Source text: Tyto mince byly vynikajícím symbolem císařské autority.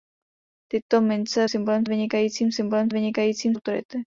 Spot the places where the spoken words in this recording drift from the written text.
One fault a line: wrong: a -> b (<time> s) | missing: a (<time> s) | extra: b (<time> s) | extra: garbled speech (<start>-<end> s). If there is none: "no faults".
wrong: byly -> symbolem (1.5 s)
wrong: císařské -> vynikajícím (2.9 s)